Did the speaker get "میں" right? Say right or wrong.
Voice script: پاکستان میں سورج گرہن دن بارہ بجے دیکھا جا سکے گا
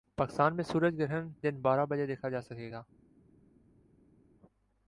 right